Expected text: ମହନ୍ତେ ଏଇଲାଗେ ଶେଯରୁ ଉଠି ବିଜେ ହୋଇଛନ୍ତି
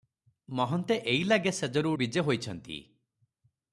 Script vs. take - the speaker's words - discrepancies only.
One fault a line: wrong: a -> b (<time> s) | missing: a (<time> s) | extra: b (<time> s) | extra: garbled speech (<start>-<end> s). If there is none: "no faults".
missing: ଉଠି (1.9 s)